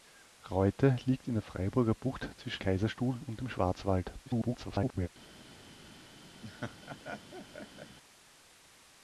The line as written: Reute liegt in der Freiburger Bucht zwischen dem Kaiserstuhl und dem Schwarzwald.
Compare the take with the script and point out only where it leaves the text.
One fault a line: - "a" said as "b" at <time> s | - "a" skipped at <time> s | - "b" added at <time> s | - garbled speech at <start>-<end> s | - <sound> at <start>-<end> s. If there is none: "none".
- "dem" skipped at 2.6 s
- garbled speech at 4.3-5.1 s
- laugh at 6.4-8.0 s